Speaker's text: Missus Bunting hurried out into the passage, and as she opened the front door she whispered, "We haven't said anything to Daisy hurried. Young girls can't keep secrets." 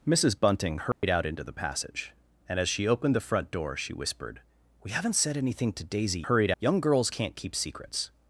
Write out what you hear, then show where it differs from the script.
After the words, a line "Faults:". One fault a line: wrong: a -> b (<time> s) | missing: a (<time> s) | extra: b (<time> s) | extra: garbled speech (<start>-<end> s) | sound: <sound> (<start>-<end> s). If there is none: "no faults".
Missus Bunting hurried out into the passage, and as she opened the front door she whispered, "We haven't said anything to Daisy hurried. Young girls can't keep secrets."
Faults:
sound: dropout (0.9-1.0 s)